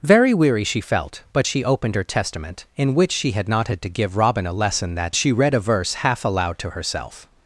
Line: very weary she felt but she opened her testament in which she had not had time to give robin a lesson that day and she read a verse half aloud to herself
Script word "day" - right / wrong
wrong